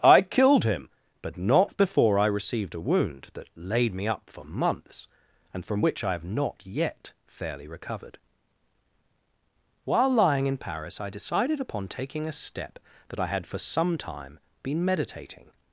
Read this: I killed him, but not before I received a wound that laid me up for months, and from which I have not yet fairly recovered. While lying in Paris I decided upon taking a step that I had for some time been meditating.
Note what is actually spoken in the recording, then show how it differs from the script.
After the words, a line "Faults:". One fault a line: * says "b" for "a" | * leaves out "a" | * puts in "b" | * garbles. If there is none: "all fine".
I killed him, but not before I received a wound that laid me up for months, and from which I have not yet fairly recovered. While lying in Paris I decided upon taking a step that I had for some time been meditating.
Faults:
all fine